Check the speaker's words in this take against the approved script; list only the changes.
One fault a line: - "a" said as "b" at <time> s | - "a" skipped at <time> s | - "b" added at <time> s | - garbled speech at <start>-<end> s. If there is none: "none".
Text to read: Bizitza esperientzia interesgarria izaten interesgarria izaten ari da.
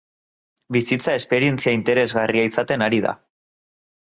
- "interesgarria izaten" skipped at 2.9 s